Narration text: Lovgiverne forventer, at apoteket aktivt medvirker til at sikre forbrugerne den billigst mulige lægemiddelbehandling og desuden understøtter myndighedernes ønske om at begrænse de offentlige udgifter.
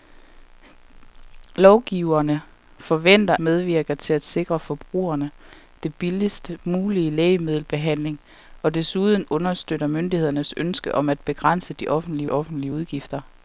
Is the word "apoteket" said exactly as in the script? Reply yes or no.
no